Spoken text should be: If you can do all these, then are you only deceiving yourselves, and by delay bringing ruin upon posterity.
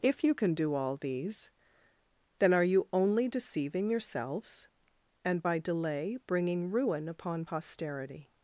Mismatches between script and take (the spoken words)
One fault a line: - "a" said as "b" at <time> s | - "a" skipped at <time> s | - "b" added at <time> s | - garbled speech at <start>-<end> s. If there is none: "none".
none